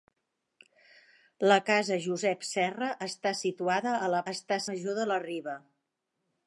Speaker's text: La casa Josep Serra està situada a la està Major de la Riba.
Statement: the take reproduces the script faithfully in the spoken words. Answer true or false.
true